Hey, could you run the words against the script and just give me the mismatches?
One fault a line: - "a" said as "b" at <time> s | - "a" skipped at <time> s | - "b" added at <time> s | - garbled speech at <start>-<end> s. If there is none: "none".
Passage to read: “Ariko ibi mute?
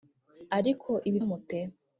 none